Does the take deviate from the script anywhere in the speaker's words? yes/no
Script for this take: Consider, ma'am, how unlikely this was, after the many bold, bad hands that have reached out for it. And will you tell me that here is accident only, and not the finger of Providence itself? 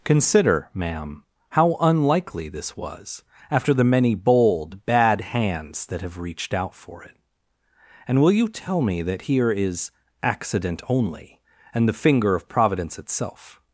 yes